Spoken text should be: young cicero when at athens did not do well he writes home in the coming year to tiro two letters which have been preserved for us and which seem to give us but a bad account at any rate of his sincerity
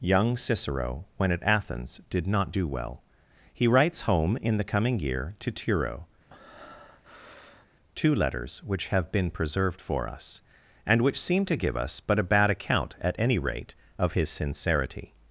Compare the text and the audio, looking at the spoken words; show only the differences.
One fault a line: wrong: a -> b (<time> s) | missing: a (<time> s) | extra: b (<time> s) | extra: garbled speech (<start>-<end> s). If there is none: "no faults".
no faults